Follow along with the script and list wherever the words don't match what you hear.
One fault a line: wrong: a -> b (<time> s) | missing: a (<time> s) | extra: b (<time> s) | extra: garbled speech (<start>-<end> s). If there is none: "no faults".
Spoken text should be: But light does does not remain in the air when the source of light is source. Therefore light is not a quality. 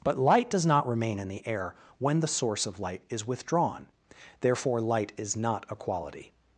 missing: does (0.7 s)
wrong: source -> withdrawn (3.3 s)